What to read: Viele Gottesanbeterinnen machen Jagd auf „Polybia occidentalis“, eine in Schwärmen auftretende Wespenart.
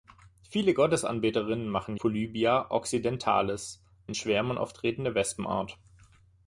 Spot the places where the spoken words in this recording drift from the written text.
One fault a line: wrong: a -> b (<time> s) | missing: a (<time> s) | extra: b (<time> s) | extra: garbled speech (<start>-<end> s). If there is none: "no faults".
missing: Jagd auf (1.9 s)
missing: eine (3.8 s)